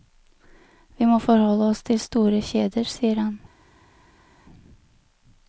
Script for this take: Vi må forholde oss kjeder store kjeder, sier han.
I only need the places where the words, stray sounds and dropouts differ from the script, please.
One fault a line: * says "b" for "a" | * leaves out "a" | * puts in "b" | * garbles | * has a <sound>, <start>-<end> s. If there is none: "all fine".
* says "til" for "kjeder"